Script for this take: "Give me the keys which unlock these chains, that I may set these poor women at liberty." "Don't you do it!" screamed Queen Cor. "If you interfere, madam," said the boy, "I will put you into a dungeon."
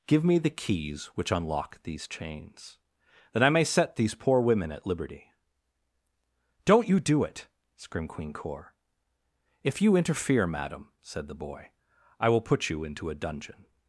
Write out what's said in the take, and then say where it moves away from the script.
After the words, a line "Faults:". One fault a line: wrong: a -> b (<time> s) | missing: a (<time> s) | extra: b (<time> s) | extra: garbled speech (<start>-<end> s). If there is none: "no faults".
"Give me the keys which unlock these chains, that I may set these poor women at liberty." "Don't you do it!" screamed Queen Cor. "If you interfere, madam," said the boy, "I will put you into a dungeon."
Faults:
no faults